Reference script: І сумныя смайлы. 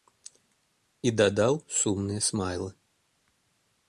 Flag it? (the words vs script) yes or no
yes